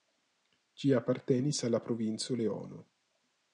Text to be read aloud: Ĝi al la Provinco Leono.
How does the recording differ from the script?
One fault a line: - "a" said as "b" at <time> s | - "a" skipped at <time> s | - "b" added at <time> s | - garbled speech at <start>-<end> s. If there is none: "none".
- "apartenis" added at 1.0 s